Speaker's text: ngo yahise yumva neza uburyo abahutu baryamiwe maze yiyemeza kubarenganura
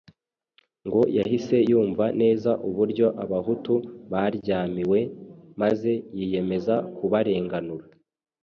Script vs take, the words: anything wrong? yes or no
no